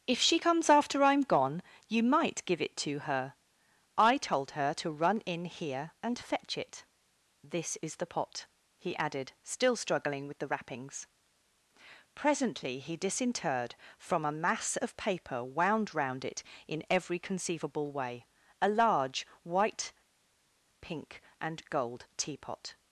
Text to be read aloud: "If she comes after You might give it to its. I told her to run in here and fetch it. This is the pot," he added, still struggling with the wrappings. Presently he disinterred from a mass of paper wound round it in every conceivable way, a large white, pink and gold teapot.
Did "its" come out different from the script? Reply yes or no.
yes